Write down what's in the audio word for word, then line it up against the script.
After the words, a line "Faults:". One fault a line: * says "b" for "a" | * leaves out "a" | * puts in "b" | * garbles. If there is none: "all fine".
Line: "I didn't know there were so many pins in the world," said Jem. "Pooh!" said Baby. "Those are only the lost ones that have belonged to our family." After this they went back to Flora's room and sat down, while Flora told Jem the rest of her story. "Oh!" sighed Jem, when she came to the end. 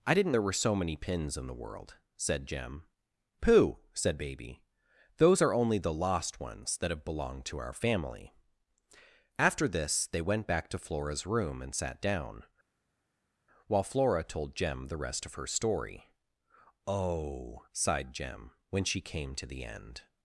"I didn't there were so many pins in the world," said Jem. "Pooh!" said Baby. "Those are only the lost ones that have belonged to our family." After this they went back to Flora's room and sat down, while Flora told Jem the rest of her story. "Oh!" sighed Jem, when she came to the end.
Faults:
* leaves out "know"